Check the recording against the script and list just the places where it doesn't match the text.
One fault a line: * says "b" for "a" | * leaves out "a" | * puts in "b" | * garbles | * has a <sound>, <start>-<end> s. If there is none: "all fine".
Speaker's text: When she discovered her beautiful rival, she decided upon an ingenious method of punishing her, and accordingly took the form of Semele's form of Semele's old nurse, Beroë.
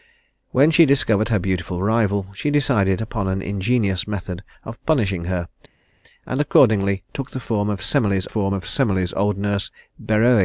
all fine